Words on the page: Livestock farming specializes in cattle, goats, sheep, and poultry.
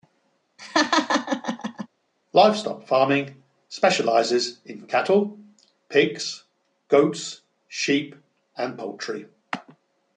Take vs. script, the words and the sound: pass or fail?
fail